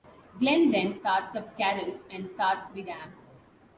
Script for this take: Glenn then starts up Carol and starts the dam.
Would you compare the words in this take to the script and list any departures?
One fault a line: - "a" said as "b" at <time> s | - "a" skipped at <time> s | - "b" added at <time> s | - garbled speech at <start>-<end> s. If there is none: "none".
none